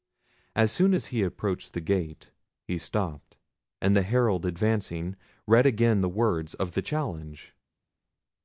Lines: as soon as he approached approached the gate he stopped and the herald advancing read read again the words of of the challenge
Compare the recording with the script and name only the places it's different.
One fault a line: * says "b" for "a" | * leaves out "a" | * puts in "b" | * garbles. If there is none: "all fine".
* leaves out "approached"
* leaves out "read"
* leaves out "of"